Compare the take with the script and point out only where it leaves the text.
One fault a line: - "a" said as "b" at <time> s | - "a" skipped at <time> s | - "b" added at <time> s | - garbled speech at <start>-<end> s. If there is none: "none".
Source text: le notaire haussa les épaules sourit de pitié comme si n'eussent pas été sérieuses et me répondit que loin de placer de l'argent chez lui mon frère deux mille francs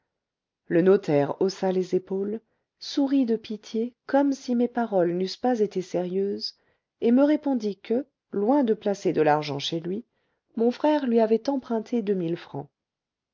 - "mes paroles" added at 4.5 s
- "lui avait emprunté" added at 11.1 s